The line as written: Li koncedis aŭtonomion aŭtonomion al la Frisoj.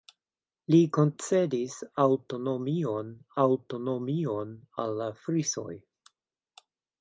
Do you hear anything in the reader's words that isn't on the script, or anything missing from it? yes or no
no